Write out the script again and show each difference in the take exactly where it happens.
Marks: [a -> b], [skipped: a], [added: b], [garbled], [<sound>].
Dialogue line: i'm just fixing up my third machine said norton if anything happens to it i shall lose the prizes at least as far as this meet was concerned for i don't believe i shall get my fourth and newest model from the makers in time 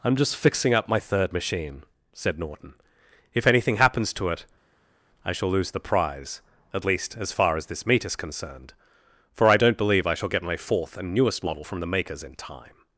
i'm just fixing up my third machine said norton if anything happens to it i shall lose the [prizes -> prize] at least as far as this meet [was -> is] concerned for i don't believe i shall get my fourth and newest model from the makers in time